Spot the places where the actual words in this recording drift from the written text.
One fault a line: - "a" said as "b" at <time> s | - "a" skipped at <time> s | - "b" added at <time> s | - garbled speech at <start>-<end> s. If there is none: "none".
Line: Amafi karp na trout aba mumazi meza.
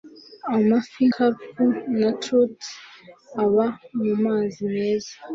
none